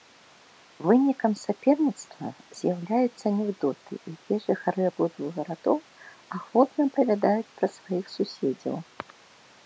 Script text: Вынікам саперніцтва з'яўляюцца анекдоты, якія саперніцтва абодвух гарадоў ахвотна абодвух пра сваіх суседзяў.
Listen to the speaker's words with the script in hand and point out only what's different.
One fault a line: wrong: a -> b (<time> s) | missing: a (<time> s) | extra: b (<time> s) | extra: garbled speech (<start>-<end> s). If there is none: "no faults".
wrong: саперніцтва -> жыхары (4.5 s)
wrong: абодвух -> апавядаюць (6.9 s)